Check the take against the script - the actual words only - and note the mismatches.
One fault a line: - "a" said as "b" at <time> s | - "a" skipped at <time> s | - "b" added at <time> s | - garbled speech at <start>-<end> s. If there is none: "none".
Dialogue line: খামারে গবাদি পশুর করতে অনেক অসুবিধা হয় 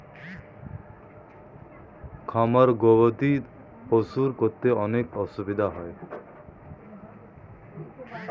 none